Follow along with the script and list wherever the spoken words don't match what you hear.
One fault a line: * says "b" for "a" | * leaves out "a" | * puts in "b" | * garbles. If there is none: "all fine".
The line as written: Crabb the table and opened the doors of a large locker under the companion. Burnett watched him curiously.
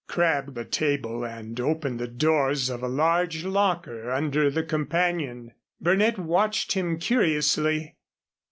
all fine